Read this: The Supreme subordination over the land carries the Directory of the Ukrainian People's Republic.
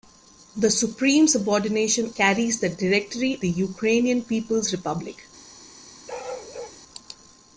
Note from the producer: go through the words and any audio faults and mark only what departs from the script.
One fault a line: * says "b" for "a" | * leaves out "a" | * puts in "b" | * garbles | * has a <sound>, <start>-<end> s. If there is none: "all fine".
* leaves out "over the land"
* leaves out "of"
* has a bark, 6.1-6.8 s